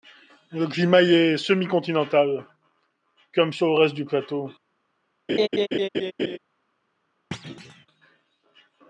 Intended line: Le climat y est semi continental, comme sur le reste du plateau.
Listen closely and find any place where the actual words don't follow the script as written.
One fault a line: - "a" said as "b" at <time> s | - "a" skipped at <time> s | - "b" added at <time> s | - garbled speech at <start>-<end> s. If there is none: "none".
none